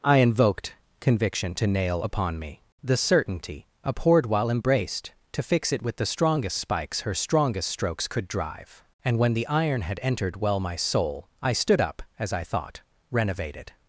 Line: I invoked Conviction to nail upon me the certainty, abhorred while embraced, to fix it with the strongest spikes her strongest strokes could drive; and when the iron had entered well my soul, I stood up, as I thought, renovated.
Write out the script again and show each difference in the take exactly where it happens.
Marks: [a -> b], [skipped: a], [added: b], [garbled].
I invoked Conviction to nail upon me the certainty, abhorred while embraced, to fix it with the strongest spikes her strongest strokes could drive; and when the iron had entered well my soul, I stood up, as I thought, renovated.